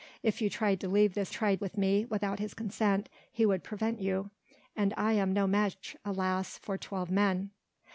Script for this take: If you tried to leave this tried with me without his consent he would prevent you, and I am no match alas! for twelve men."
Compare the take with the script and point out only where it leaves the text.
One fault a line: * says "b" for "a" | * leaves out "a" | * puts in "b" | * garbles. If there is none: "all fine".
all fine